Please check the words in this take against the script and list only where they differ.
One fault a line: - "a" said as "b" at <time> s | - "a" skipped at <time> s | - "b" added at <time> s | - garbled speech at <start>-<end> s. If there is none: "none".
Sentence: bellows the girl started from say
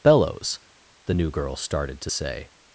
- "new" added at 1.1 s
- "from" said as "to" at 2.0 s